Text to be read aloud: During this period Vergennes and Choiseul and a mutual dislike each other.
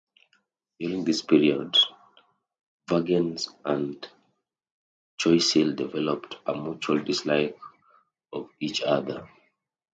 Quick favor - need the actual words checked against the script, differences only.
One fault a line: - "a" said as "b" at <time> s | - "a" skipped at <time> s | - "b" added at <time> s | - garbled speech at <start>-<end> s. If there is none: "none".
- "and" said as "developed" at 5.7 s
- "of" added at 8.3 s